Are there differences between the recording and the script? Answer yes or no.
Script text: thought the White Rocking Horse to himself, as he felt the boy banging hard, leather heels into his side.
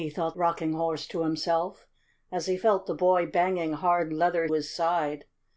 yes